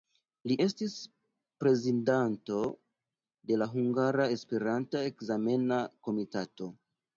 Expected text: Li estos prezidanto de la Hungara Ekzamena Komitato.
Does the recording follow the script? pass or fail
fail